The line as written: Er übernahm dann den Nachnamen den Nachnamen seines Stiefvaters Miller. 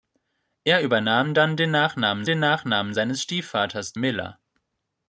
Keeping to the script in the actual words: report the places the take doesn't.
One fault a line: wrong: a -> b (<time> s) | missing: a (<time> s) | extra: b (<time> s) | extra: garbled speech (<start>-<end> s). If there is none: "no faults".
no faults